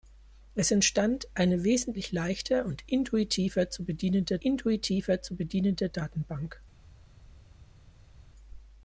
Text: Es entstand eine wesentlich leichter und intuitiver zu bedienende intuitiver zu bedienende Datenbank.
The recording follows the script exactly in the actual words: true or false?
true